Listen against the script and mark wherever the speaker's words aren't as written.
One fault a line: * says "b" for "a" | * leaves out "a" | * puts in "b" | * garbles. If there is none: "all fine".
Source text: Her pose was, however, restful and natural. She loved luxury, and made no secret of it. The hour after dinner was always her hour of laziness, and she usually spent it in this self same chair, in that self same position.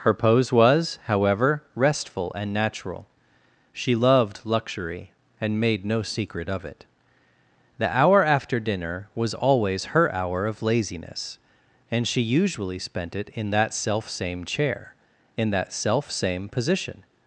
* says "that" for "this"